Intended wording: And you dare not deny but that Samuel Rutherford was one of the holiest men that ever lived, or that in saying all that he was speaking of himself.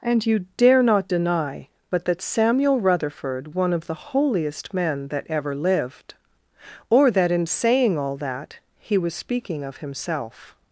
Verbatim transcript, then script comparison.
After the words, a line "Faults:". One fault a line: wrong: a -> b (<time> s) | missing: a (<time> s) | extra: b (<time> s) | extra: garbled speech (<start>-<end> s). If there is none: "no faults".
And you dare not deny but that Samuel Rutherford one of the holiest men that ever lived, or that in saying all that he was speaking of himself.
Faults:
missing: was (3.5 s)